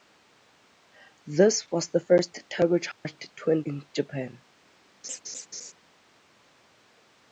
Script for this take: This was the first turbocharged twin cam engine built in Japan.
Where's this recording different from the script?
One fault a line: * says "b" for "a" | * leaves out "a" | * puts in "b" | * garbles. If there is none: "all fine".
* leaves out "cam engine built"